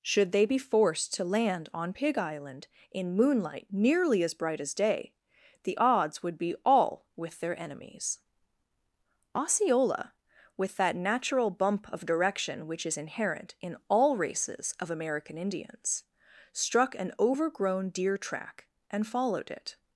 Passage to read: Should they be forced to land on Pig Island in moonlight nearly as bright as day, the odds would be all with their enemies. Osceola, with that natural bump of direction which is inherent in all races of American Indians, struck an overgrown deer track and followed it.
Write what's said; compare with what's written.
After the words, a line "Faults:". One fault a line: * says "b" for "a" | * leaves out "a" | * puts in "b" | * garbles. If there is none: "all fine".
Should they be forced to land on Pig Island in moonlight nearly as bright as day, the odds would be all with their enemies. Osceola, with that natural bump of direction which is inherent in all races of American Indians, struck an overgrown deer track and followed it.
Faults:
all fine